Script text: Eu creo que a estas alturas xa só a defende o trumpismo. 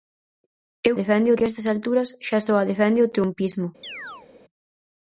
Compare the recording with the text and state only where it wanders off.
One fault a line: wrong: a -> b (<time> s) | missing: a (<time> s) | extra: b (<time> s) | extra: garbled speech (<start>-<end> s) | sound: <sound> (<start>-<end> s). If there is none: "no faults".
wrong: creo -> defende (1.0 s)
sound: chirp (3.8-4.3 s)